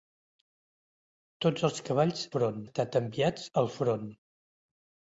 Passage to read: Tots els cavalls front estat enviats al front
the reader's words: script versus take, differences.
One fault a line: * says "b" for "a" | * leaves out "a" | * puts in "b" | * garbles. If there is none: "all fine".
all fine